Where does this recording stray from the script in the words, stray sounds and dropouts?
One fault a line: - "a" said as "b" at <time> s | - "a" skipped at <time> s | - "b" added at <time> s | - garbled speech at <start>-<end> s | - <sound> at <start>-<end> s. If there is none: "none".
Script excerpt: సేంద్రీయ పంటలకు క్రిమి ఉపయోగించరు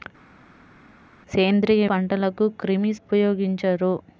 none